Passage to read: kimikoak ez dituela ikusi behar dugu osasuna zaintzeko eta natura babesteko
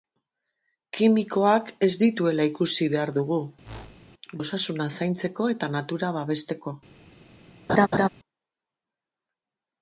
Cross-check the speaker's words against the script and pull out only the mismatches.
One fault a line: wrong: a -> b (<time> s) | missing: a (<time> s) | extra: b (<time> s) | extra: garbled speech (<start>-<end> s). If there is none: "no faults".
no faults